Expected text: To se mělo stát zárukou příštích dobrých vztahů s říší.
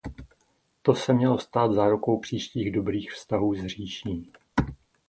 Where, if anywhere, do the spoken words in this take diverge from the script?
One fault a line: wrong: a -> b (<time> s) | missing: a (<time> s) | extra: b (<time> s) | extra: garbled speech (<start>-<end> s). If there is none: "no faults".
no faults